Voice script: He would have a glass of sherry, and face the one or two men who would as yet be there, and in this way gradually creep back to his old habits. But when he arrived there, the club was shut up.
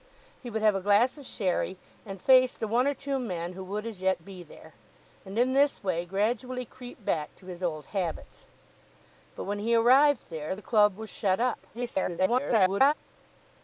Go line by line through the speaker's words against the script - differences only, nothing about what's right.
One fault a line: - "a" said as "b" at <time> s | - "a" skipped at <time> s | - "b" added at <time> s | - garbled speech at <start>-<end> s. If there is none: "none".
- garbled speech at 11.7-12.9 s